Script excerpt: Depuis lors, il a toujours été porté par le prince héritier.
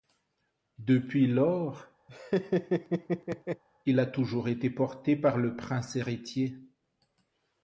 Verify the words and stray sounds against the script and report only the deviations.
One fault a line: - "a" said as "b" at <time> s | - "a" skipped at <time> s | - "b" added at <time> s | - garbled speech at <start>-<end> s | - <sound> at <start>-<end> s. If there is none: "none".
- laugh at 2.1-3.6 s